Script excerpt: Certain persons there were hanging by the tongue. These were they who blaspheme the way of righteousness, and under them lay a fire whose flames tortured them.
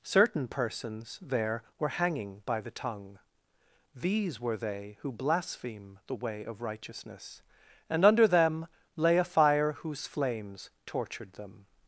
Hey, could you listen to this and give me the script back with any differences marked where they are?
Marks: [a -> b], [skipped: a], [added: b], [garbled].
Certain persons there were hanging by the tongue. These were they who blaspheme the way of righteousness, and under them lay a fire whose flames tortured them.